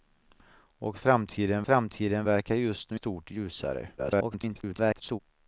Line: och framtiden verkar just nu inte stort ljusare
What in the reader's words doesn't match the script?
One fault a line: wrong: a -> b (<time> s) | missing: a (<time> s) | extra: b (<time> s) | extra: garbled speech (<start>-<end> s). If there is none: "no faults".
extra: framtiden (1.6 s)
missing: inte (3.0 s)
extra: garbled speech (4.0-5.2 s)